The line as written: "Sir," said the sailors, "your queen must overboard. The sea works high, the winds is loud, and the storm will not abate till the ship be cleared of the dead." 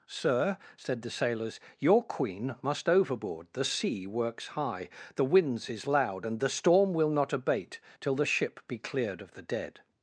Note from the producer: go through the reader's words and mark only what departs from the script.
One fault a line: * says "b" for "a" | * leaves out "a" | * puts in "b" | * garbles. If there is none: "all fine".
all fine